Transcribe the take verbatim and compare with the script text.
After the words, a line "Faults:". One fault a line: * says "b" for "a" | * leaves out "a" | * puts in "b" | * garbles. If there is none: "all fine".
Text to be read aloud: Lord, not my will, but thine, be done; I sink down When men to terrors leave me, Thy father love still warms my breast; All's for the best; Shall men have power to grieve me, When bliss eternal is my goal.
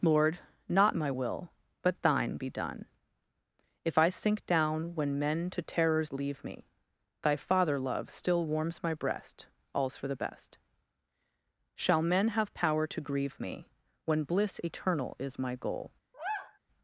Lord, not my will, but thine, be done; If I sink down When men to terrors leave me, Thy father love still warms my breast; All's for the best; Shall men have power to grieve me, When bliss eternal is my goal.
Faults:
* puts in "If"